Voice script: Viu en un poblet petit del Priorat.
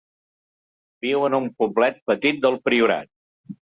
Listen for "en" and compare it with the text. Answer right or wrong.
right